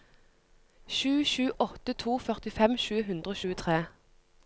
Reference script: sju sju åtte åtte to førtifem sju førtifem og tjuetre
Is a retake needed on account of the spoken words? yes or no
yes